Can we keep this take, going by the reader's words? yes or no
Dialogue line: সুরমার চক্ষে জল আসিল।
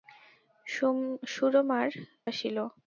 no